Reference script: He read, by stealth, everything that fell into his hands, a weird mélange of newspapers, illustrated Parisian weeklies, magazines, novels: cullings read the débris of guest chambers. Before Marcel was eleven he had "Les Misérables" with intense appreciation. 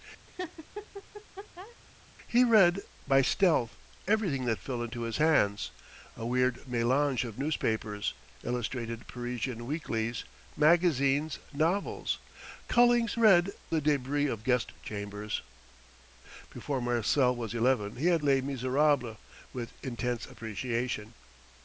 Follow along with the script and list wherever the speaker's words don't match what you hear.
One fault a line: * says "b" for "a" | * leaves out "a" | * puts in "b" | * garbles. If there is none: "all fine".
all fine